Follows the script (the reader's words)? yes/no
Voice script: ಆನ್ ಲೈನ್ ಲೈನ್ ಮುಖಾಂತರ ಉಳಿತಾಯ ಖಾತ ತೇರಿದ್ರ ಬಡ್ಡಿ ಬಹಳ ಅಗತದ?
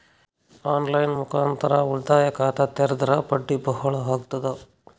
no